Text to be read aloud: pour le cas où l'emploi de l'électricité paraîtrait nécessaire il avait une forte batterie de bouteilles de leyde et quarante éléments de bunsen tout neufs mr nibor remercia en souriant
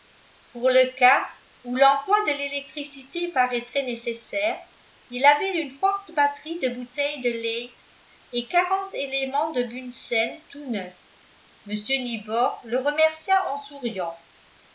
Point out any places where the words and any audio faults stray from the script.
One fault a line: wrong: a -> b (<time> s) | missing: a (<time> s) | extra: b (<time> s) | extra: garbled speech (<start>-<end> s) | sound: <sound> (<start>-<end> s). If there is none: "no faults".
extra: le (12.6 s)